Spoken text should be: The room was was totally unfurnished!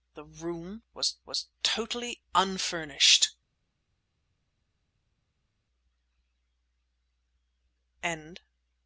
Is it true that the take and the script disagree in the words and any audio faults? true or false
false